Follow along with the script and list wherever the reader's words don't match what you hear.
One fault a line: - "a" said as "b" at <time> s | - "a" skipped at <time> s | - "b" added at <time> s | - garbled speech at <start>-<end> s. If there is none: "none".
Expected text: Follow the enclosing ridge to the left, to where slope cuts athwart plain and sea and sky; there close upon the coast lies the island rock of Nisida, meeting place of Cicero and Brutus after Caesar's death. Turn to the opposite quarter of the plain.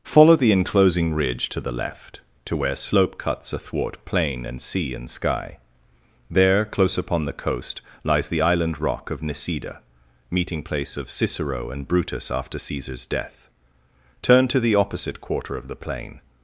none